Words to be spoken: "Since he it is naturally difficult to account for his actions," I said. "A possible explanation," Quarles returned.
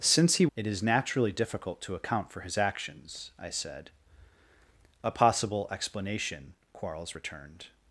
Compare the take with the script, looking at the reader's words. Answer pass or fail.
pass